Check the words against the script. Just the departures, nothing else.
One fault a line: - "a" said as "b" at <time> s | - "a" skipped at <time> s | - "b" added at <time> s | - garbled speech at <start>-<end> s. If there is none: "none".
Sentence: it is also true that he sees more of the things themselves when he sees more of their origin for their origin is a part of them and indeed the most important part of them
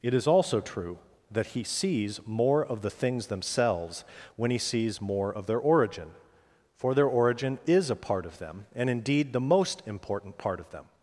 none